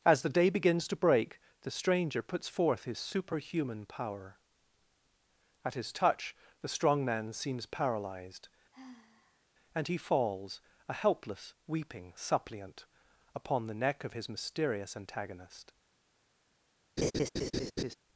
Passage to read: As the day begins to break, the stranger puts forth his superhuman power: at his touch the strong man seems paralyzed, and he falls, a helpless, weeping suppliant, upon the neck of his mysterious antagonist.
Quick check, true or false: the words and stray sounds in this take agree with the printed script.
false